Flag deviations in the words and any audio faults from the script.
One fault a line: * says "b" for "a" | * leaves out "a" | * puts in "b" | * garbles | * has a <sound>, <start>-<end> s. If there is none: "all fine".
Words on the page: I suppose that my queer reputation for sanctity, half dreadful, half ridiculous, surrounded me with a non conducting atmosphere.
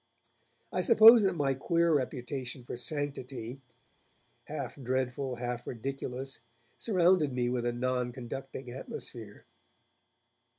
all fine